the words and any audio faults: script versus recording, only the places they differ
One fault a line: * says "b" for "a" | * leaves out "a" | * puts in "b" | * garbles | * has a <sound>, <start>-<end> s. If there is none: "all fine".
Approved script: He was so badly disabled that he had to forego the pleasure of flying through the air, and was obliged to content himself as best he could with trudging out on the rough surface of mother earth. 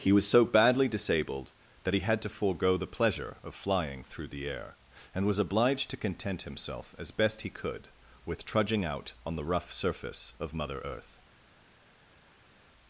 all fine